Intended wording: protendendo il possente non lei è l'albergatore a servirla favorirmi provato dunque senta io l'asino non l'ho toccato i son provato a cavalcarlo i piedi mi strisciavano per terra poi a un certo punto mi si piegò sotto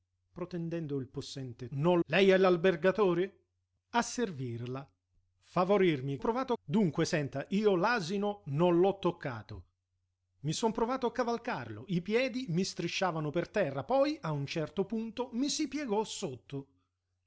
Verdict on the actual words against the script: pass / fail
pass